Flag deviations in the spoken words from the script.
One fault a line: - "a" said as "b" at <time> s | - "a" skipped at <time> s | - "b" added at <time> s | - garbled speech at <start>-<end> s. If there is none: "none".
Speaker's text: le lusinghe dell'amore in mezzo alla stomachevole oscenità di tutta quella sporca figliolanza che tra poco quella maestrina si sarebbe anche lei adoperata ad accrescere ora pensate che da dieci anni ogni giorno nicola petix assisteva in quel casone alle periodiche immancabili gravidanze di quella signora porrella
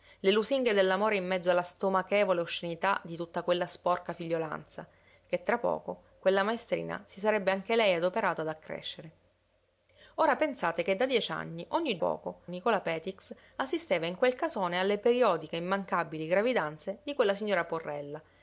- "giorno" said as "poco" at 12.0 s